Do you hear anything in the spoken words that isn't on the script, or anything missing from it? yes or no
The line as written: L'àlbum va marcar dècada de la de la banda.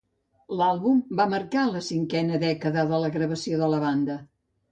yes